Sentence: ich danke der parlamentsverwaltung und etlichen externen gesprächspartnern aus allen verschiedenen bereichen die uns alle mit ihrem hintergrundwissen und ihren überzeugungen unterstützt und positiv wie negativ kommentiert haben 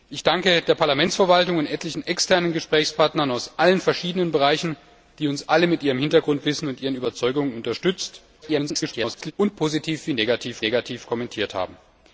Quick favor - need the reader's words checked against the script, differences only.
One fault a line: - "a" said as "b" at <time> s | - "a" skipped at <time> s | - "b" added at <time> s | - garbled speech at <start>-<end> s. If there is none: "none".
- garbled speech at 8.4-9.3 s
- "negativ" added at 10.6 s